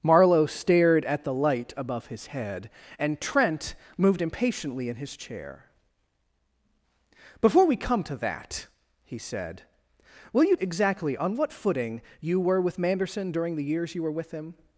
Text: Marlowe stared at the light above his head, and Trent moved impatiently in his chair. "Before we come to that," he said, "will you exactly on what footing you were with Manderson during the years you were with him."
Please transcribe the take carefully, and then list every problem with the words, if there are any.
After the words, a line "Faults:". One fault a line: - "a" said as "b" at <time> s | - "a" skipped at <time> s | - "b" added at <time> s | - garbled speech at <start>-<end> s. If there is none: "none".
Marlowe stared at the light above his head, and Trent moved impatiently in his chair. "Before we come to that," he said, "will you exactly on what footing you were with Manderson during the years you were with him."
Faults:
none